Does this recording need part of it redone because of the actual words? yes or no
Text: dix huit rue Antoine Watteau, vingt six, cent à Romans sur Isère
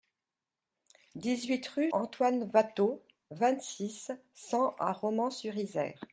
no